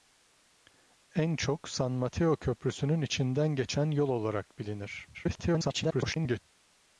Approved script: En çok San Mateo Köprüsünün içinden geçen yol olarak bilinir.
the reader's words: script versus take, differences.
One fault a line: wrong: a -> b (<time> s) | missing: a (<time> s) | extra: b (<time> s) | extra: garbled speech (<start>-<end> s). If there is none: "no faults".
extra: garbled speech (5.1-6.4 s)